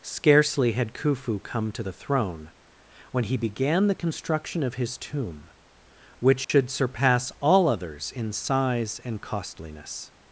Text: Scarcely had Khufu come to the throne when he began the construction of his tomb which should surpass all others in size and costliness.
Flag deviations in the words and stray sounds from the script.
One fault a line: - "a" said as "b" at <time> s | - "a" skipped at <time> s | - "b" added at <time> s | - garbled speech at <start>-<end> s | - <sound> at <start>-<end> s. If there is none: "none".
- dropout at 6.4-6.5 s